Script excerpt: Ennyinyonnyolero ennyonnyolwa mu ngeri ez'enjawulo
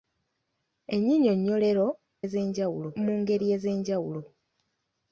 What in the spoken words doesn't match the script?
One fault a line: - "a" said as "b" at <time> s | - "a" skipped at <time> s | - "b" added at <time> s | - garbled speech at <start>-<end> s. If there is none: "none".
- "ennyonnyolwa" said as "ez'enjawulo" at 2.2 s